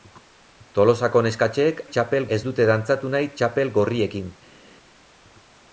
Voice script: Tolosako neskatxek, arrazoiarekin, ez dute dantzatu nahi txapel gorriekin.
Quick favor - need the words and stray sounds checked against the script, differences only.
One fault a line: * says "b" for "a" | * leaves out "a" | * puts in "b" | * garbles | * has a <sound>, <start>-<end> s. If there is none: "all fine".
* says "txapel" for "arrazoiarekin"